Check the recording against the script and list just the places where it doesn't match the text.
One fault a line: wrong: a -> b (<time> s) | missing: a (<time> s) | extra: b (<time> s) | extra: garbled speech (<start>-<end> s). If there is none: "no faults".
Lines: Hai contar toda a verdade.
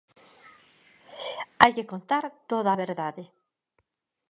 extra: que (1.7 s)